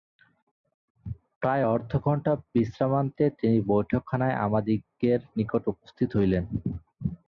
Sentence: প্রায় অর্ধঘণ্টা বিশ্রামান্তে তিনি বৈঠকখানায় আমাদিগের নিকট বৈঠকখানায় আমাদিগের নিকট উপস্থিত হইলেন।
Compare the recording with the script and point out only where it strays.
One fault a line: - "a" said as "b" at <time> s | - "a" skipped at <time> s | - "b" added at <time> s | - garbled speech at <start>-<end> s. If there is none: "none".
- "বৈঠকখানায় আমাদিগের নিকট" skipped at 5.6 s